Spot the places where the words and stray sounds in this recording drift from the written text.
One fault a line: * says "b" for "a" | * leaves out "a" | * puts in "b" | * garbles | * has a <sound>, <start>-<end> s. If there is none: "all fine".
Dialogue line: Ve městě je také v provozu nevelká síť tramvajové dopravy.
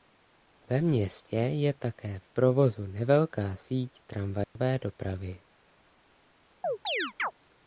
* has a dropout, 4.4-4.6 s
* has a chirp, 6.6-7.3 s